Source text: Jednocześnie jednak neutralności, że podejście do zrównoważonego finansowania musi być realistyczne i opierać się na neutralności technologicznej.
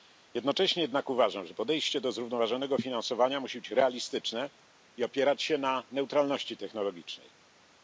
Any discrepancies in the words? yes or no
yes